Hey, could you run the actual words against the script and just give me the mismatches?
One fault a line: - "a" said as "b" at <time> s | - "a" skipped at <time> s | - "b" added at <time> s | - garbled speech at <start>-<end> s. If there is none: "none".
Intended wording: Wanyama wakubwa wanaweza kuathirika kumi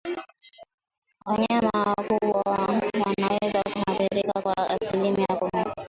- "kwa asilimia" added at 4.4 s